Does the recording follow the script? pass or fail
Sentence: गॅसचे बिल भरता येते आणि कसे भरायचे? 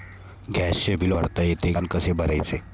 pass